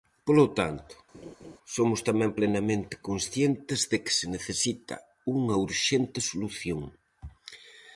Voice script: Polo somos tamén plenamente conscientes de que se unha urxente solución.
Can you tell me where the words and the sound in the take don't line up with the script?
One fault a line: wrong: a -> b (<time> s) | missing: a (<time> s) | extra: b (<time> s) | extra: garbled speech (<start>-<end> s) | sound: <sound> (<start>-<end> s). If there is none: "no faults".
extra: tanto (0.6 s)
sound: laugh (1.1-1.6 s)
extra: necesita (4.3 s)